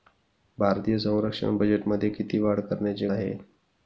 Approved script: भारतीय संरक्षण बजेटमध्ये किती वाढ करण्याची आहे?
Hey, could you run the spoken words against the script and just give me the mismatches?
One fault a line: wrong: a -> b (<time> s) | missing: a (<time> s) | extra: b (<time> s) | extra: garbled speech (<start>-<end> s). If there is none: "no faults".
no faults